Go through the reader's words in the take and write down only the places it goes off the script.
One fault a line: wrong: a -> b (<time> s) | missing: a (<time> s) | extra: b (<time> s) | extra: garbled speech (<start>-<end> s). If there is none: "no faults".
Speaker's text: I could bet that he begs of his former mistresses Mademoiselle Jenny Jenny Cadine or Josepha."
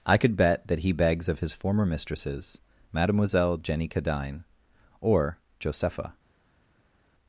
missing: Jenny (3.9 s)